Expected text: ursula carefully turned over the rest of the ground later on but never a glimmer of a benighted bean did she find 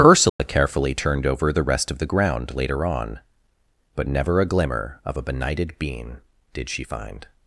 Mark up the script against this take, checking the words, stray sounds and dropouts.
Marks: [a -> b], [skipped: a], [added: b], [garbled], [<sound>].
ursula [dropout] carefully turned over the rest of the ground later on but never a glimmer of a benighted bean did she find